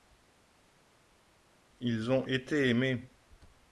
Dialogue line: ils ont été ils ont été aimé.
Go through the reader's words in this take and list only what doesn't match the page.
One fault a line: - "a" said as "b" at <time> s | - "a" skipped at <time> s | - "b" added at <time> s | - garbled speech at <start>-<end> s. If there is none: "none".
- "ils ont été" skipped at 2.7 s